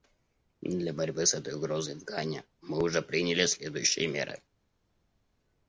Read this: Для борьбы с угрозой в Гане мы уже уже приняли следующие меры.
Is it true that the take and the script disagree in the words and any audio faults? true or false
true